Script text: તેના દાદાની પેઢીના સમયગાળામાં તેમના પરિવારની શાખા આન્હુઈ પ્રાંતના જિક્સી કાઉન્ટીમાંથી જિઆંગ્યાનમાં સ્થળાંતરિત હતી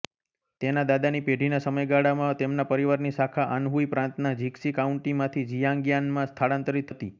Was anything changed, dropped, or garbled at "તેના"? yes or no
no